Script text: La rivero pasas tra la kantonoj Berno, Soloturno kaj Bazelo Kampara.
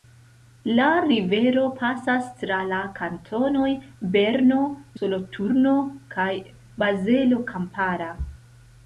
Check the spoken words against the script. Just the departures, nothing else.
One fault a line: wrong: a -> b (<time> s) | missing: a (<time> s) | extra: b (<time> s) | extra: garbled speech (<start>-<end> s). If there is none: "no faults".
no faults